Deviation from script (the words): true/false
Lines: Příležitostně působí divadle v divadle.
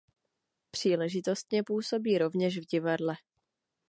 true